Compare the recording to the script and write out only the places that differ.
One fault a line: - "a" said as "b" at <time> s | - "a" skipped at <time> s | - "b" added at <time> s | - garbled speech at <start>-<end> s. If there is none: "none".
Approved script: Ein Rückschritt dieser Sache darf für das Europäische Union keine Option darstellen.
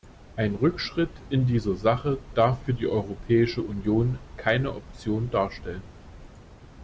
- "in" added at 1.3 s
- "das" said as "die" at 2.7 s